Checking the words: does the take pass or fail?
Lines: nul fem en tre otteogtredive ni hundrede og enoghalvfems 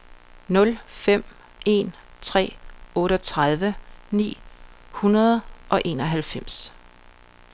pass